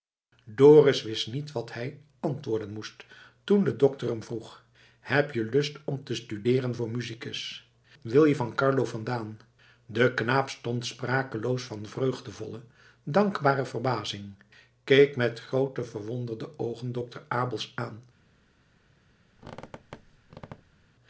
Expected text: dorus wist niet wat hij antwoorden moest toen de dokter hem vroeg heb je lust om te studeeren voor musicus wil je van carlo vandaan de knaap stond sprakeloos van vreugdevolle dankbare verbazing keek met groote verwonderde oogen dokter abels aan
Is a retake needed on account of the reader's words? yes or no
no